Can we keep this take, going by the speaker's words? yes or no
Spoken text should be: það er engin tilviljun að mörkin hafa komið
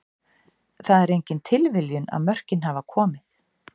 yes